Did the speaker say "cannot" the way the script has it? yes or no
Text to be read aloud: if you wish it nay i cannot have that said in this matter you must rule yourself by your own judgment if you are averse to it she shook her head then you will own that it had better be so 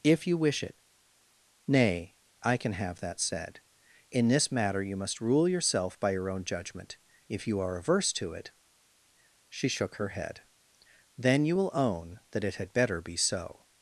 no